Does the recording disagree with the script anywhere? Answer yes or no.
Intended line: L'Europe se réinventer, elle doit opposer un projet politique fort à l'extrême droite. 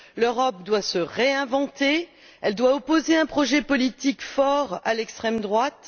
yes